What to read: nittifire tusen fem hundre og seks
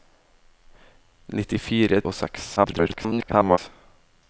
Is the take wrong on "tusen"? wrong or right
wrong